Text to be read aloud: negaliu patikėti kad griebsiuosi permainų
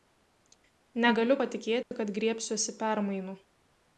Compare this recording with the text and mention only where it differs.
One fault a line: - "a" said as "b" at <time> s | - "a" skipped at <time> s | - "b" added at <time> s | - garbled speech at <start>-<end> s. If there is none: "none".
none